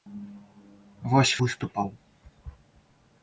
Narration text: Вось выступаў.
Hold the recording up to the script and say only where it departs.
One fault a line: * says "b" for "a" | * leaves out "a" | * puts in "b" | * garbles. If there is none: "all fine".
all fine